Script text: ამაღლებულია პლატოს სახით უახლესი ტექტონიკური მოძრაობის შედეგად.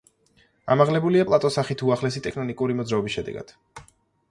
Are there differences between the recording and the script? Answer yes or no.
no